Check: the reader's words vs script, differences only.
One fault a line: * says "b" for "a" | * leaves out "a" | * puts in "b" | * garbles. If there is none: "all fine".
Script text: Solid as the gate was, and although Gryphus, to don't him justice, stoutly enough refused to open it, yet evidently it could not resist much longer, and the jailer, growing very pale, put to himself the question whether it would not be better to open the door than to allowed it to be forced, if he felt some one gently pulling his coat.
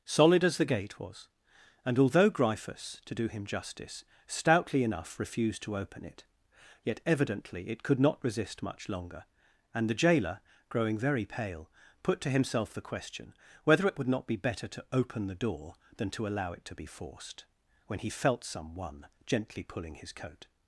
* says "do" for "don't"
* says "allow" for "allowed"
* says "when" for "if"